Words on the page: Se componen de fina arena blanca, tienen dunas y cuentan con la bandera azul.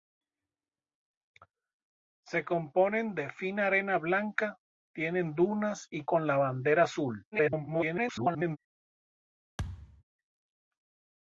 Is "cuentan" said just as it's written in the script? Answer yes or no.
no